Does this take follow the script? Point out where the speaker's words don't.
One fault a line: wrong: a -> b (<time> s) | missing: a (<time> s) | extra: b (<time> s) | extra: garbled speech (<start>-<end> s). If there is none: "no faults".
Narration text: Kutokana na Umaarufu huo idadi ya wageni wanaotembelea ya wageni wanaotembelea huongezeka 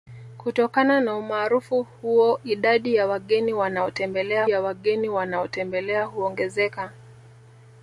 no faults